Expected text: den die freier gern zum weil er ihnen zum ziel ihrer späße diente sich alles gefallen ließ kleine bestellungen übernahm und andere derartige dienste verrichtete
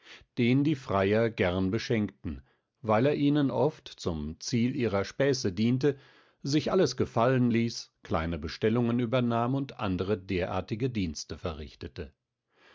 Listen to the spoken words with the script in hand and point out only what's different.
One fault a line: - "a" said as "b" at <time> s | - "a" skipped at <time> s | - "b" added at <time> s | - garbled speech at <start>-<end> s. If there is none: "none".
- "zum" said as "beschenkten" at 1.7 s
- "oft" added at 3.5 s